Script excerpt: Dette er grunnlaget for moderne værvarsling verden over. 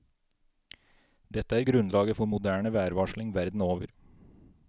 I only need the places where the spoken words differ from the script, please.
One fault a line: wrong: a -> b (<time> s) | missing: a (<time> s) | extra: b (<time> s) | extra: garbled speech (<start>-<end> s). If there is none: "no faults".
no faults